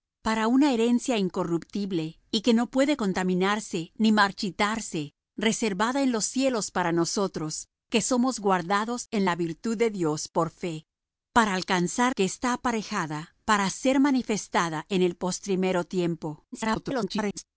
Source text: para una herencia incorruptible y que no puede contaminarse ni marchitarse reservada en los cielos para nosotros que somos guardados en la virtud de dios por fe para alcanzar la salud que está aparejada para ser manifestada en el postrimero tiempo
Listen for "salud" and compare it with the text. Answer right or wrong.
wrong